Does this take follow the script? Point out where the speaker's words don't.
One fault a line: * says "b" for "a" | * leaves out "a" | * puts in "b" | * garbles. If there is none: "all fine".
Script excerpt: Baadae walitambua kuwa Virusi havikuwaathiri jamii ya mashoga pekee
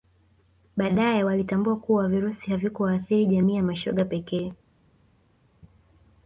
all fine